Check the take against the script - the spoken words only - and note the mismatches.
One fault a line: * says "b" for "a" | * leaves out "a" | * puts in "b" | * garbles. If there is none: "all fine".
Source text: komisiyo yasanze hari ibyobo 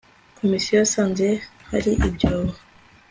all fine